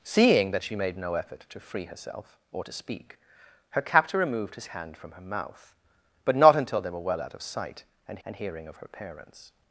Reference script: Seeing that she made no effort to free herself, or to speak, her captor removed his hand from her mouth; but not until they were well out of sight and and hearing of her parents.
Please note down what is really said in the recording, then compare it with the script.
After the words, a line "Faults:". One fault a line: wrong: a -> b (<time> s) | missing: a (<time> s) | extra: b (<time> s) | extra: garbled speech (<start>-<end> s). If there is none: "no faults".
Seeing that she made no effort to free herself, or to speak, her captor removed his hand from her mouth; but not until they were well out of sight and and hearing of her parents.
Faults:
no faults